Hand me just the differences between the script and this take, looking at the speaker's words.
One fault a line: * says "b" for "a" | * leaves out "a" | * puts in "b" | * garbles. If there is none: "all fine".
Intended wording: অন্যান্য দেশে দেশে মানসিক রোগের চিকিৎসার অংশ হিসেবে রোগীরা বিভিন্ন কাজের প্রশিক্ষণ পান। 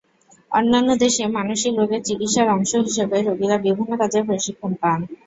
* leaves out "দেশে"